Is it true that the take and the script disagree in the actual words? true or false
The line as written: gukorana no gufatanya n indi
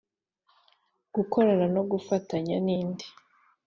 false